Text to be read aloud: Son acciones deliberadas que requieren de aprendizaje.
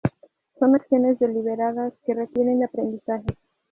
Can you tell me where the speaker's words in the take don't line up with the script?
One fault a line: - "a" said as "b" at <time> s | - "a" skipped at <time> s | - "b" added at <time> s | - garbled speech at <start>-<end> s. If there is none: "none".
none